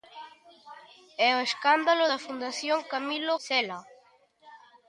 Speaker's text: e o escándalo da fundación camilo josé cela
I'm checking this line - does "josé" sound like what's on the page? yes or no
no